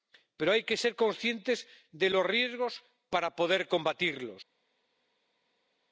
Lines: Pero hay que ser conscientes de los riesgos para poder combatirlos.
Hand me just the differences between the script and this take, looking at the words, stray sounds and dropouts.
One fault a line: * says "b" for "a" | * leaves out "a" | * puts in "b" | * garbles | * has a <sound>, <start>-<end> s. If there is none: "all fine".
all fine